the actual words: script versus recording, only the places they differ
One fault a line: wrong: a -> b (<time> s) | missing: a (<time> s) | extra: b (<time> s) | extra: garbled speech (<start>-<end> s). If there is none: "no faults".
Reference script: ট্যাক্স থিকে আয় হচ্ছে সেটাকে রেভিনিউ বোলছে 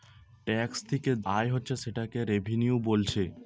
no faults